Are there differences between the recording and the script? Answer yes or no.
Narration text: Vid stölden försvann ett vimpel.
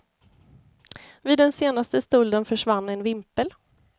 yes